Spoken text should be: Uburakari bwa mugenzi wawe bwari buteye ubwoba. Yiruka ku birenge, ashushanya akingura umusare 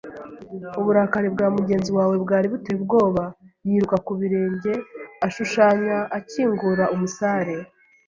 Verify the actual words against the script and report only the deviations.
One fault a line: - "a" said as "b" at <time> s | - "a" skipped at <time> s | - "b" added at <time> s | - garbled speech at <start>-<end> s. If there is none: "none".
none